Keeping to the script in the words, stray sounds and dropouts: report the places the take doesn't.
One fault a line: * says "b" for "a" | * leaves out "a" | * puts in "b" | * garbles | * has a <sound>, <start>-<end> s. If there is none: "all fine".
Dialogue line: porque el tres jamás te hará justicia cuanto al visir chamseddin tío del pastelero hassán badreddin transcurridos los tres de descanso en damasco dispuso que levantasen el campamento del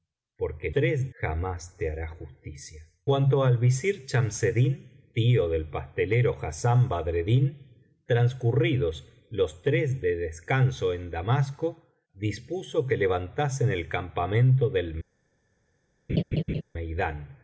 * has a laugh, 16.1-16.6 s